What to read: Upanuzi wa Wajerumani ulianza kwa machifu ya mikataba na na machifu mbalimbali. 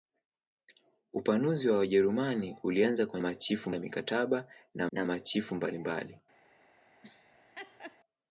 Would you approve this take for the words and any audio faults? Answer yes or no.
no